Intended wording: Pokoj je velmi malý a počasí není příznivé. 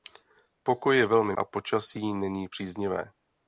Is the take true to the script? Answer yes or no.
no